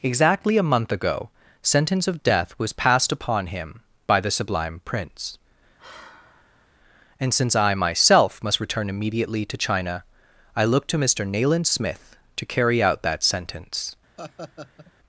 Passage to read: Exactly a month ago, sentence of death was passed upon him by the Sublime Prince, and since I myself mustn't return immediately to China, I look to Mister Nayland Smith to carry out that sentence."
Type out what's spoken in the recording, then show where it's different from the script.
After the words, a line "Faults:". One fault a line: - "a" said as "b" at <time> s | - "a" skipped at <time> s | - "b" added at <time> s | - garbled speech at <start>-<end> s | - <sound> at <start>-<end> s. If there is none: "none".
Exactly a month ago, sentence of death was passed upon him by the Sublime Prince, and since I myself must return immediately to China, I look to Mister Nayland Smith to carry out that sentence."
Faults:
- sigh at 5.8-6.7 s
- "mustn't" said as "must" at 8.4 s
- laugh at 14.2-14.9 s